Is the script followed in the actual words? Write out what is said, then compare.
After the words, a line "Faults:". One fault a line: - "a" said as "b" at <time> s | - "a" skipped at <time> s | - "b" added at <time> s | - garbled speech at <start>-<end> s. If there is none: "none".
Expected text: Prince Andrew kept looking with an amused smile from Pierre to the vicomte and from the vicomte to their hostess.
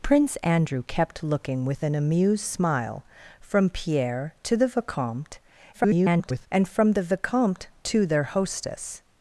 Prince Andrew kept looking with an amused smile from Pierre to the vicomte [garbled] and from the vicomte to their hostess.
Faults:
- garbled speech at 5.7-6.5 s